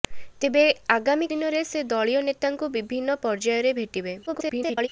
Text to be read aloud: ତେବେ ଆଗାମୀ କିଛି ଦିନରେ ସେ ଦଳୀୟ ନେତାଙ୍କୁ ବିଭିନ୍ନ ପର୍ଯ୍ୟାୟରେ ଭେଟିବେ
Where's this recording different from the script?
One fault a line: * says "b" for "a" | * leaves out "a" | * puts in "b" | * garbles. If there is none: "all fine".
* leaves out "କିଛି"
* garbles